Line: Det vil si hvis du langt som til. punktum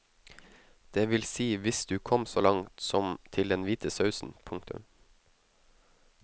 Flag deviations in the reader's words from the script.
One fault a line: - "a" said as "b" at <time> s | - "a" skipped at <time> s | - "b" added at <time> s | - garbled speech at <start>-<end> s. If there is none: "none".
- "kom så" added at 2.0 s
- "den hvite sausen" added at 3.5 s